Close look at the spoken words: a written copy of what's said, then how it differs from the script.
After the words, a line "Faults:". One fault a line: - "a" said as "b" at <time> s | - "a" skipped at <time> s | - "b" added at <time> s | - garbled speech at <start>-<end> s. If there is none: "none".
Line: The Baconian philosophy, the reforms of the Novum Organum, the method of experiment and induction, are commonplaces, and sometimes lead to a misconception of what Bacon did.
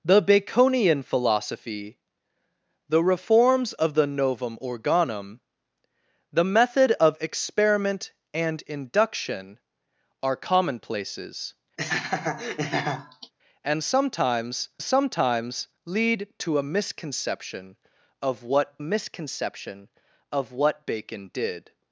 The Baconian philosophy, the reforms of the Novum Organum, the method of experiment and induction, are commonplaces, and sometimes sometimes lead to a misconception of what misconception of what Bacon did.
Faults:
- "sometimes" added at 14.8 s
- "misconception of what" added at 18.8 s